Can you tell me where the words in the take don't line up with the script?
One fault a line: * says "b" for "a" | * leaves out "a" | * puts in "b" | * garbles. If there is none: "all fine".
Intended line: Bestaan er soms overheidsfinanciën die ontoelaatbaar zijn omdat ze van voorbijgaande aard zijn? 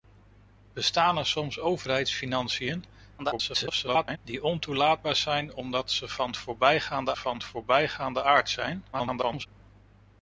* garbles
* puts in "van voorbijgaande"
* garbles